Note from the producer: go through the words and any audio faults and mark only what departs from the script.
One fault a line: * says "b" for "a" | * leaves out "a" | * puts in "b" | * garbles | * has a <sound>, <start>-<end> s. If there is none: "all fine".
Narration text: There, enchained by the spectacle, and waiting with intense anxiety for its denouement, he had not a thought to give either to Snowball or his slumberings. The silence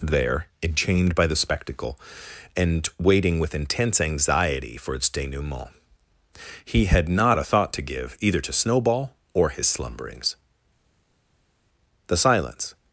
all fine